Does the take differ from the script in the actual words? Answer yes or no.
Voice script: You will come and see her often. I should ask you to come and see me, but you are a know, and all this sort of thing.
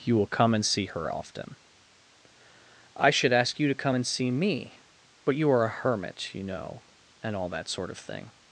yes